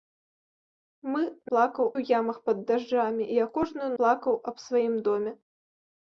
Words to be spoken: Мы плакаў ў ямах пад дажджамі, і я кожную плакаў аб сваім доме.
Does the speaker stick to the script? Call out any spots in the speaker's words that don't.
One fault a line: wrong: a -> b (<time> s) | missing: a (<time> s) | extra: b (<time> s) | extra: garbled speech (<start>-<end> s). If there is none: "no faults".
no faults